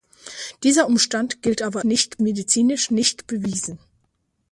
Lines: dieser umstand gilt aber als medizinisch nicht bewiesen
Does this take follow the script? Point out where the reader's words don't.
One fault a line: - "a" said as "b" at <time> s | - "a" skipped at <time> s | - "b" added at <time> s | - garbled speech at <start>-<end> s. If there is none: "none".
- "als" said as "nicht" at 1.8 s